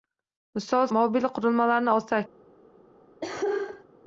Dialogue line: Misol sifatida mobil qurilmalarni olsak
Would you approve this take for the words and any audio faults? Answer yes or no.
no